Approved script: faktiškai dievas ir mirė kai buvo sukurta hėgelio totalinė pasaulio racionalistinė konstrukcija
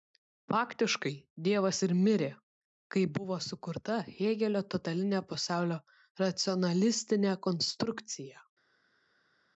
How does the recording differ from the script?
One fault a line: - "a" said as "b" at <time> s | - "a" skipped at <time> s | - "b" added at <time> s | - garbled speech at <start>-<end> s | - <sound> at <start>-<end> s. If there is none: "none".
none